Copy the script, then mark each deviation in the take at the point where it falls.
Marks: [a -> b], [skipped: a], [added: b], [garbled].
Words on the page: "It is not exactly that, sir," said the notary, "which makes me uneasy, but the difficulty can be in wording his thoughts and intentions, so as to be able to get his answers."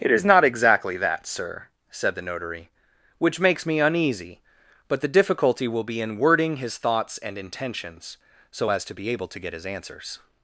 "It is not exactly that, sir," said the notary, "which makes me uneasy, but the difficulty [can -> will] be in wording his thoughts and intentions, so as to be able to get his answers."